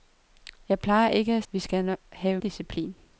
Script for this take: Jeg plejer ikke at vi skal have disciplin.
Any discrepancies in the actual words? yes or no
no